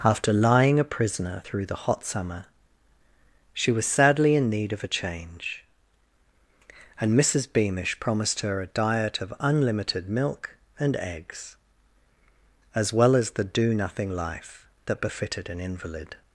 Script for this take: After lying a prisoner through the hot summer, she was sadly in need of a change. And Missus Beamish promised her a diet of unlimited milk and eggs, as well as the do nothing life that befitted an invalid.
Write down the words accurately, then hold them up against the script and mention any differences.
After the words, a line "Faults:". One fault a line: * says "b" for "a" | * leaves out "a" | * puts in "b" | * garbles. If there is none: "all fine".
After lying a prisoner through the hot summer, she was sadly in need of a change. And Missus Beamish promised her a diet of unlimited milk and eggs, as well as the do nothing life that befitted an invalid.
Faults:
all fine